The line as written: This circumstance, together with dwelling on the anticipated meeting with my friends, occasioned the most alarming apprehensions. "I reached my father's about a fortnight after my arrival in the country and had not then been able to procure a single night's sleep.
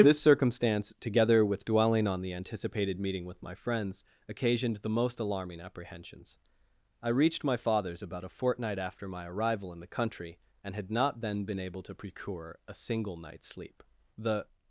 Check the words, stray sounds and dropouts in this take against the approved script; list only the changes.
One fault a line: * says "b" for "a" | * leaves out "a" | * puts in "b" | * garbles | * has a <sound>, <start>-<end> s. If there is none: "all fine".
* puts in "The"